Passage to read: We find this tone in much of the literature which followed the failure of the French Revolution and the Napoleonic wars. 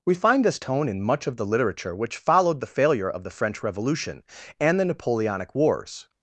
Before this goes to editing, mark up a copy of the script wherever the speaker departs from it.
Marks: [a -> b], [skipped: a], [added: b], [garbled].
We find this tone in much of the literature which followed the failure of the French Revolution and the Napoleonic wars.